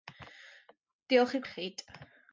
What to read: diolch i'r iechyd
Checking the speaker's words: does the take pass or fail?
pass